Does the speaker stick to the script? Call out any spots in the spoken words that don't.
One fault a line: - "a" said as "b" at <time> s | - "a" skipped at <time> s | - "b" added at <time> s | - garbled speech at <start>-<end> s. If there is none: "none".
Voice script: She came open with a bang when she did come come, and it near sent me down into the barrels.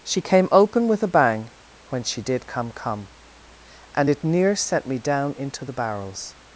none